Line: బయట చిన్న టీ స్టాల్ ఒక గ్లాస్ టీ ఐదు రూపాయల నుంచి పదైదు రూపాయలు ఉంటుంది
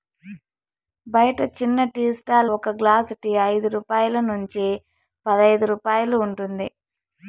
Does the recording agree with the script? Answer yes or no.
yes